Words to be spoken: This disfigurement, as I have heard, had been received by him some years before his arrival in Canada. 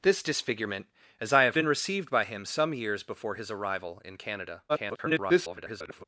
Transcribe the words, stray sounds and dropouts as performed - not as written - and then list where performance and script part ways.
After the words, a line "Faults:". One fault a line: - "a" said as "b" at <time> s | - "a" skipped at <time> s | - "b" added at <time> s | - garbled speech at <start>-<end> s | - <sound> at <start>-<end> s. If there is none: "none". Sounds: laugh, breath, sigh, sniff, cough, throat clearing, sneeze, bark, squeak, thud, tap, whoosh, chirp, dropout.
This disfigurement, as I have been received by him some years before his arrival in Canada. [garbled]
Faults:
- "heard had" skipped at 1.6 s
- garbled speech at 4.7-6.0 s